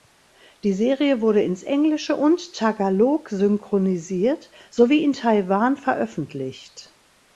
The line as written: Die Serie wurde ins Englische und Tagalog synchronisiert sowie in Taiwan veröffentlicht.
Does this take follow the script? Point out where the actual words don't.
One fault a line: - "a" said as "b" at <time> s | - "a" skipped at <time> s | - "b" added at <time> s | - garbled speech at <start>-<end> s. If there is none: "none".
none